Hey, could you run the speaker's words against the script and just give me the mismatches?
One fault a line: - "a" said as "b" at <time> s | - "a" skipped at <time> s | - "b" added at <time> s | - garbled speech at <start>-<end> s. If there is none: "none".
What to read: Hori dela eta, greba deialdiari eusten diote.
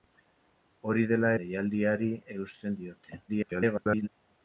- "eta greba" skipped at 1.3 s
- garbled speech at 3.3-4.1 s